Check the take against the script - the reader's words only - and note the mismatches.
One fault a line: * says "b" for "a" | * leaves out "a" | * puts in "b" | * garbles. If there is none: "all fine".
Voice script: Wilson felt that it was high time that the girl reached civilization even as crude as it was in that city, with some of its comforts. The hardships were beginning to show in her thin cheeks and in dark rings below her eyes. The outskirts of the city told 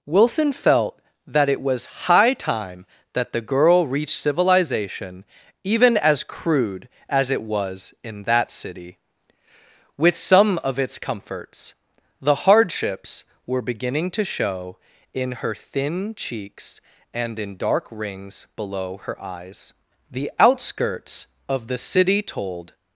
all fine